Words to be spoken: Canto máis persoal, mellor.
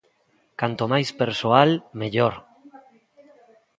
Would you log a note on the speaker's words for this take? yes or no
no